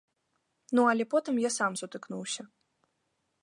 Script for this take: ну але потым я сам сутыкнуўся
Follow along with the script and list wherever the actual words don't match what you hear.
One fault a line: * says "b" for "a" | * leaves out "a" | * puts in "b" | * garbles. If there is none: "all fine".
all fine